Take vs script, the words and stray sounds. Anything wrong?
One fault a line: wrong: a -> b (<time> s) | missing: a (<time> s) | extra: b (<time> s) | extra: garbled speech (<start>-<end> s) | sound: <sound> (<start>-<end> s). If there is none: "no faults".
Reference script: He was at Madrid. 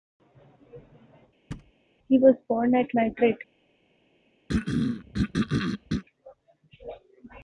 sound: thud (1.5-1.7 s)
extra: born (2.5 s)
sound: throat clearing (4.5-6.0 s)